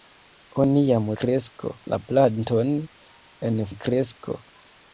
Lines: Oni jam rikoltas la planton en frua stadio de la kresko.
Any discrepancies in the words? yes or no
yes